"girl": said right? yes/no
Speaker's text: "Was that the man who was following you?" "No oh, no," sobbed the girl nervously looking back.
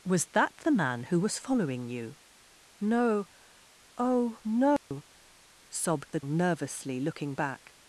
no